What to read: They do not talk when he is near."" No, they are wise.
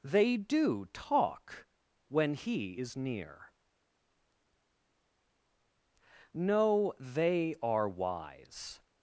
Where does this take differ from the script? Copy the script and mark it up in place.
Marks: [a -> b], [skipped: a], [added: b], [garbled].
They do [skipped: not] talk when he is near."" No, they are wise.